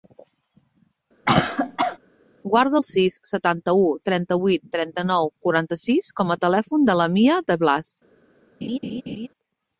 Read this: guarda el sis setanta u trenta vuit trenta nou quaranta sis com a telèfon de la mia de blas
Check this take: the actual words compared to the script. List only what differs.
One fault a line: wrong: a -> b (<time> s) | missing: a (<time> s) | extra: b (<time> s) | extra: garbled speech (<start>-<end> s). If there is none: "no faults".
no faults